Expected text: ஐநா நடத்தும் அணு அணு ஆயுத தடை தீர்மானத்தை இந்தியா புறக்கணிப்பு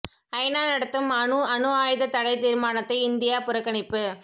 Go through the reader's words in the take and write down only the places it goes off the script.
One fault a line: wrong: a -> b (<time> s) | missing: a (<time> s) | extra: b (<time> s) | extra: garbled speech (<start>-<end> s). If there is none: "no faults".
no faults